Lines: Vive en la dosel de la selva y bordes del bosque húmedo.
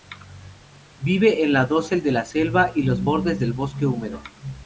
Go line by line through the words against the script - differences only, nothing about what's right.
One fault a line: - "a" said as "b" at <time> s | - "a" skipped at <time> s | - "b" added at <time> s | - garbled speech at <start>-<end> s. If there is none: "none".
- "los" added at 2.8 s